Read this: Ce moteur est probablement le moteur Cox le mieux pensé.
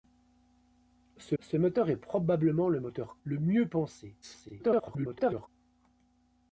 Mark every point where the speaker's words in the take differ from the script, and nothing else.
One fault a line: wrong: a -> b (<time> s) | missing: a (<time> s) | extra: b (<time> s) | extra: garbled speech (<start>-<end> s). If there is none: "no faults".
extra: ce (1.4 s)
missing: Cox (3.2 s)
extra: garbled speech (4.2-5.5 s)